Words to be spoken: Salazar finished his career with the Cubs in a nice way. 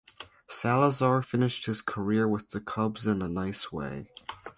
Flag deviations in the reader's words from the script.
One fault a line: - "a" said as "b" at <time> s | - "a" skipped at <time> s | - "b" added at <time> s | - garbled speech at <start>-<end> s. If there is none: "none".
none